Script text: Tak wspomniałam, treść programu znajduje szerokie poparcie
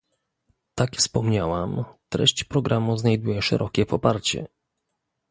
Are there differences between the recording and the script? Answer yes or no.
no